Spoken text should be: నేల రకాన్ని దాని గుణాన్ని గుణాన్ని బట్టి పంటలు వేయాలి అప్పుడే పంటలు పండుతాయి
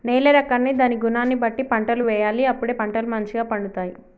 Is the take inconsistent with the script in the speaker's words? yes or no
yes